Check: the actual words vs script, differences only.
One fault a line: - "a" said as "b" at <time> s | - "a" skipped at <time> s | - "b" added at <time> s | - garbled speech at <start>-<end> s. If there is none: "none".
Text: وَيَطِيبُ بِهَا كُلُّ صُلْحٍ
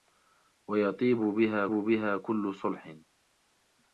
- "بِهَا" added at 1.7 s